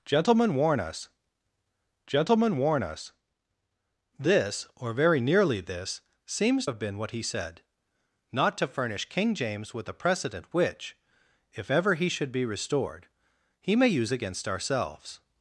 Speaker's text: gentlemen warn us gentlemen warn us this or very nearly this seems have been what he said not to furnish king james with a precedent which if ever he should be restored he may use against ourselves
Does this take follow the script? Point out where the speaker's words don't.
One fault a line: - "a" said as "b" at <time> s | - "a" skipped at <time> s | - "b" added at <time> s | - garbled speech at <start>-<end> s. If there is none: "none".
none